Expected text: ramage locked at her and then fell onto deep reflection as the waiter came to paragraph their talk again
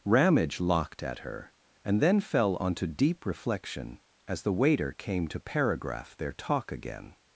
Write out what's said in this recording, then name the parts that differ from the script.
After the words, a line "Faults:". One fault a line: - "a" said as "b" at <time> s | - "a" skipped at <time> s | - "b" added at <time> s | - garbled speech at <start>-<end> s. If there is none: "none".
ramage locked at her and then fell onto deep reflection as the waiter came to paragraph their talk again
Faults:
none